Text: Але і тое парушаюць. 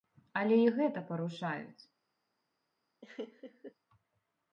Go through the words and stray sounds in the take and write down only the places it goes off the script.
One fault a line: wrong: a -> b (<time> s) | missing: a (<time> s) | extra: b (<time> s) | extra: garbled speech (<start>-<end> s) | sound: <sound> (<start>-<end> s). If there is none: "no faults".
wrong: тое -> гэта (0.8 s)
sound: laugh (3.0-3.7 s)